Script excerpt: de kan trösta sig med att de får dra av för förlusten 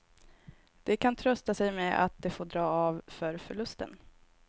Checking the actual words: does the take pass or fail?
pass